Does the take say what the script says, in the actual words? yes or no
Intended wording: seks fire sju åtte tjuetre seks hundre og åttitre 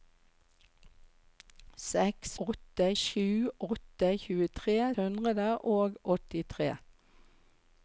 no